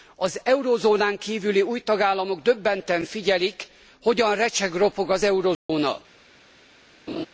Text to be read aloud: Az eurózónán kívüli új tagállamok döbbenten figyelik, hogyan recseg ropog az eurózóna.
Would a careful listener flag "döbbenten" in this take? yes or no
no